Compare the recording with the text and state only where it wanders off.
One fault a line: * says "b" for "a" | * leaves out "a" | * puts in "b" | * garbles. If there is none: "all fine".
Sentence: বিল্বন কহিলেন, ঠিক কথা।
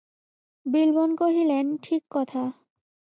all fine